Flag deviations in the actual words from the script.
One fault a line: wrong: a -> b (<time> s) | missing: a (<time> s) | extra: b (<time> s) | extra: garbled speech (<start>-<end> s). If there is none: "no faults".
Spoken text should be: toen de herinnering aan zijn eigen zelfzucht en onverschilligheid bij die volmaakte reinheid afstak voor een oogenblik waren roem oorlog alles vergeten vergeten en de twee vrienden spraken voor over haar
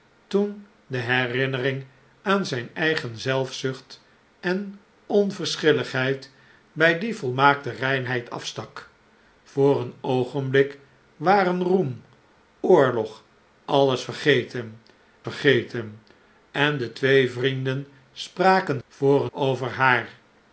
no faults